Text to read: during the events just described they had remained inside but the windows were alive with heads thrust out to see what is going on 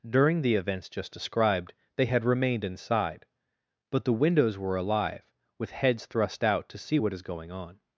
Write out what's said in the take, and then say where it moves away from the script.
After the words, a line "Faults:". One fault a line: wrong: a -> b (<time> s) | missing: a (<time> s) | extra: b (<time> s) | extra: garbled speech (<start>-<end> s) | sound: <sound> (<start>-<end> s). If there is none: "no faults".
during the events just described they had remained inside but the windows were alive with heads thrust out to see what is going on
Faults:
no faults